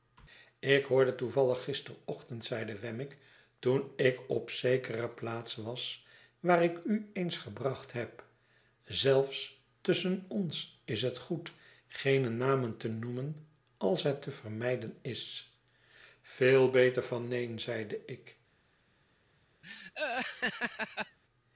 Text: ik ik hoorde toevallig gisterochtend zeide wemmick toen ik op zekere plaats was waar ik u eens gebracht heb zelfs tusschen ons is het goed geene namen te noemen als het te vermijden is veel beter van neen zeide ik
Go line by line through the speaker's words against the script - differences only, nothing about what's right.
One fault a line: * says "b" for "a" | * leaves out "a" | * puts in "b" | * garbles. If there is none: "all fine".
* leaves out "ik"